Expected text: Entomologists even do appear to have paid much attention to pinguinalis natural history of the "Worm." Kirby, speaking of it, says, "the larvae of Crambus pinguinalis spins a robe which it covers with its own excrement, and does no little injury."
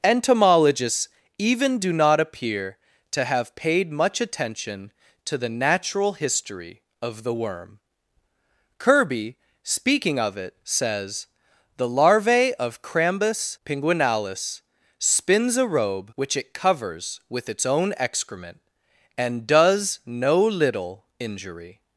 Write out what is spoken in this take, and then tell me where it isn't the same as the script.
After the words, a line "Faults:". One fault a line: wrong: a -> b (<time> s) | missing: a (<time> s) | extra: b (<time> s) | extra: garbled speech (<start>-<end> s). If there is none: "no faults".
Entomologists even do not appear to have paid much attention to the natural history of the "Worm." Kirby, speaking of it, says, "the larvae of Crambus pinguinalis spins a robe which it covers with its own excrement, and does no little injury."
Faults:
extra: not (1.9 s)
wrong: pinguinalis -> the (5.4 s)